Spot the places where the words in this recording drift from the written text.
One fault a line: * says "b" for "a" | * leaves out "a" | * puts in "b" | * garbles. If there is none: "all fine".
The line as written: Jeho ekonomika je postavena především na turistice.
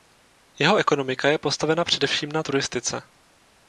all fine